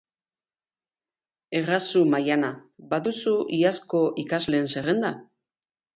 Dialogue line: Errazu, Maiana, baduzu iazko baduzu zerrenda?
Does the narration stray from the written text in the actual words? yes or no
yes